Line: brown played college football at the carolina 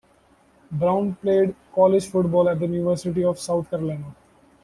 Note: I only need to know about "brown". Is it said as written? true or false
true